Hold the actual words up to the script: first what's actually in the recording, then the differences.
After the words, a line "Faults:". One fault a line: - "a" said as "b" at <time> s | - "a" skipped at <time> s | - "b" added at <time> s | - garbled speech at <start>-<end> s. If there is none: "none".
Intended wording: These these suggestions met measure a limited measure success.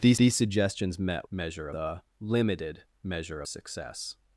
These these suggestions met measure a limited measure success.
Faults:
none